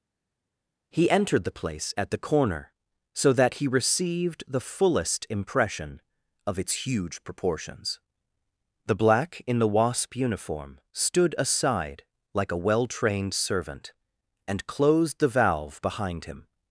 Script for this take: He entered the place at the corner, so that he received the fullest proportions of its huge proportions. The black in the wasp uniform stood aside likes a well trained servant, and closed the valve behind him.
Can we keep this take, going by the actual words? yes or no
no